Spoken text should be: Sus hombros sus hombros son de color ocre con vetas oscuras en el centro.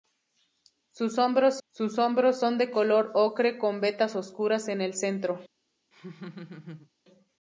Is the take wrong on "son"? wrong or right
right